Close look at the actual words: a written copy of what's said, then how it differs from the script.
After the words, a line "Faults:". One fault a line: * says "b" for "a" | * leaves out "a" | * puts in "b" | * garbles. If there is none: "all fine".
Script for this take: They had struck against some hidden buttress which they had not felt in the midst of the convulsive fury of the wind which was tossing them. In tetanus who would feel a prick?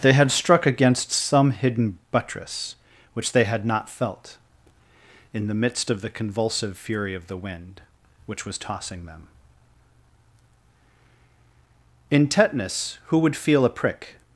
They had struck against some hidden buttress which they had not felt in the midst of the convulsive fury of the wind which was tossing them. In tetanus who would feel a prick?
Faults:
all fine